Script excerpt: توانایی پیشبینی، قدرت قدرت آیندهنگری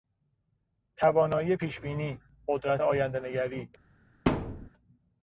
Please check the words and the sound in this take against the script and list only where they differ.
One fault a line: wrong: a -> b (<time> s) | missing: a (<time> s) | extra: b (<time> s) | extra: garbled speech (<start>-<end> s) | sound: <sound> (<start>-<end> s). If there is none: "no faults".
missing: قدرت (2.8 s)
sound: thud (4.3-4.7 s)